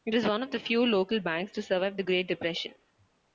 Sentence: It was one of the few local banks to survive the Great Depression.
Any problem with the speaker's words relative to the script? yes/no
no